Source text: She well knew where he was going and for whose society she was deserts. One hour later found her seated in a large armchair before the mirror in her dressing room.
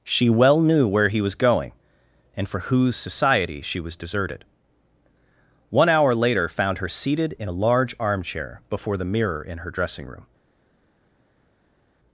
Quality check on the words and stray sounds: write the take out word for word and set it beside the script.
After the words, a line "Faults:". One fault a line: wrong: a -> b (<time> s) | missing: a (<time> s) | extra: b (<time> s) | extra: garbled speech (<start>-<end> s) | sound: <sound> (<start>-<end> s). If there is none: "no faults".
She well knew where he was going and for whose society she was deserted. One hour later found her seated in a large armchair before the mirror in her dressing room.
Faults:
wrong: deserts -> deserted (4.0 s)